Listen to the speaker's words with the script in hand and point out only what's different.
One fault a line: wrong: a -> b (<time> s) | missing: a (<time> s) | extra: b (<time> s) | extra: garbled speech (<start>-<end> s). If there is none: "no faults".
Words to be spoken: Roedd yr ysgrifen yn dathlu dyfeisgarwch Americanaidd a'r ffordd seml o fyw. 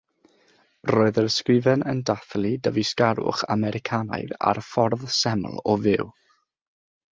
no faults